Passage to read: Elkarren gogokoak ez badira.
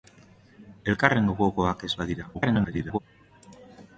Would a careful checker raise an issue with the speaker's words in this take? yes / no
yes